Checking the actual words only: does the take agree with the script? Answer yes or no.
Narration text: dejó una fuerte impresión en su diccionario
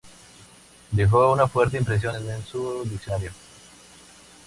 yes